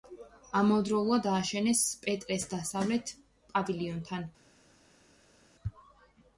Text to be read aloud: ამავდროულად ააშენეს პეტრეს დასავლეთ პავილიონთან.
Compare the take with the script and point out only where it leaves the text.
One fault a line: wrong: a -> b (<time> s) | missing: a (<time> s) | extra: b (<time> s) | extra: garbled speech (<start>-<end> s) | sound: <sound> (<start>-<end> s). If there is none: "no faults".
no faults